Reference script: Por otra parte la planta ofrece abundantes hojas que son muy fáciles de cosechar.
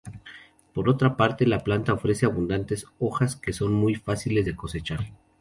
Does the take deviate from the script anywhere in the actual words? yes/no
no